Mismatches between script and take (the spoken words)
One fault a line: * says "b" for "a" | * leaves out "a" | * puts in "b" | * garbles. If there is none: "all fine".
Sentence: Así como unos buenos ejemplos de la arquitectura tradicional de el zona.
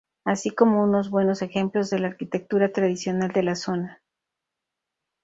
* says "la" for "el"